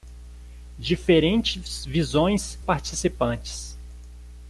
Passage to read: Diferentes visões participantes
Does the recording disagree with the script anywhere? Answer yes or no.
no